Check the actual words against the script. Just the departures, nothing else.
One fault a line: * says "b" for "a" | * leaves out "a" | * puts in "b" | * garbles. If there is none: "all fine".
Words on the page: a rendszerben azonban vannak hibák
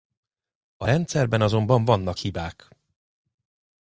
all fine